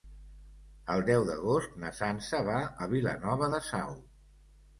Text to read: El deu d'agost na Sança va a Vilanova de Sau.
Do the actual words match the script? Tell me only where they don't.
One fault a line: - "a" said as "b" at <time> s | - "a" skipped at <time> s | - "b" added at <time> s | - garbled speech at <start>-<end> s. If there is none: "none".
none